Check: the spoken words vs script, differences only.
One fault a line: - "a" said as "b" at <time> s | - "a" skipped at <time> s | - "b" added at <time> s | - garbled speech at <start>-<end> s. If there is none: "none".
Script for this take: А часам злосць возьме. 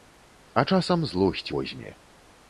none